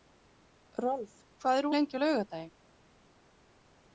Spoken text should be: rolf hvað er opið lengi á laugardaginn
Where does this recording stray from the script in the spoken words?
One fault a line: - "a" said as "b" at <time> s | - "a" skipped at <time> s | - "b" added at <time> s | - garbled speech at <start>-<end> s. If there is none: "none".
- "opið" skipped at 1.7 s